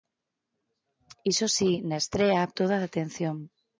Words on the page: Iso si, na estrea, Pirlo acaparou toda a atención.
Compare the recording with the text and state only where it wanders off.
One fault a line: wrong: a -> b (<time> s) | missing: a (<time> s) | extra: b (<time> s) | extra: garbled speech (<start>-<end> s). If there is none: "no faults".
missing: Pirlo acaparou (2.5 s)